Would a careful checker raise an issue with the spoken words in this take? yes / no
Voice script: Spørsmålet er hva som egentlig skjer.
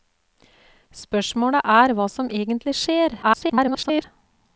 yes